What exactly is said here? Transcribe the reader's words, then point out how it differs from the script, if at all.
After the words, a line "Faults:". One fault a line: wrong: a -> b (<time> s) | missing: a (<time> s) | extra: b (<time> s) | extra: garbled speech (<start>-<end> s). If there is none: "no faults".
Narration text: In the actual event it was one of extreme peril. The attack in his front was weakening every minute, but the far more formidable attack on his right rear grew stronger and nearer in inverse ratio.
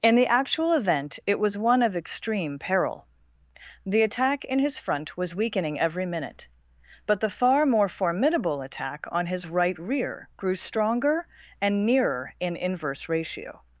In the actual event it was one of extreme peril. The attack in his front was weakening every minute, but the far more formidable attack on his right rear grew stronger and nearer in inverse ratio.
Faults:
no faults